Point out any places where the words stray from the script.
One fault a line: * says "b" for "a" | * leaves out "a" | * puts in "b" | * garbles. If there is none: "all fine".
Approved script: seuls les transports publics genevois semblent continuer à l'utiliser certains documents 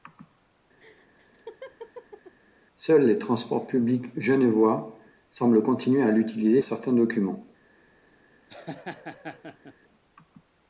all fine